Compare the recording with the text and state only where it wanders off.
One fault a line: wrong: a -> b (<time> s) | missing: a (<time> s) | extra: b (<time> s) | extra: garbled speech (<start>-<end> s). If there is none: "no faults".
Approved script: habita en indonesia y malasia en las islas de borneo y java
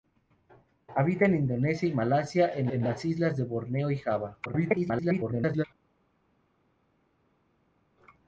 extra: en (2.7 s)
extra: garbled speech (4.4-5.6 s)